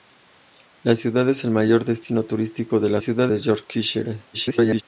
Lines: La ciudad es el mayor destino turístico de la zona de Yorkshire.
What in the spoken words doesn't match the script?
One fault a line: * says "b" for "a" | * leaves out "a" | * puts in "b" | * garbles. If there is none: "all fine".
* says "ciudad" for "zona"
* garbles